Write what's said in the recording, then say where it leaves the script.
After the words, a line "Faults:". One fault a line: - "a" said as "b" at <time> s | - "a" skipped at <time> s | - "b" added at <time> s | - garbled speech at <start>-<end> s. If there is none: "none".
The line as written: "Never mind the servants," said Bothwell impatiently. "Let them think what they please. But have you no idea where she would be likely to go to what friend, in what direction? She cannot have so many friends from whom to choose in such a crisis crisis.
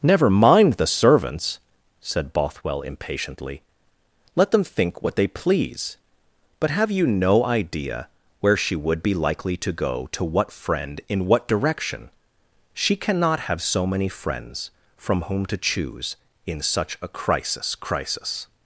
"Never mind the servants," said Bothwell impatiently. "Let them think what they please. But have you no idea where she would be likely to go to what friend, in what direction? She cannot have so many friends from whom to choose in such a crisis crisis.
Faults:
none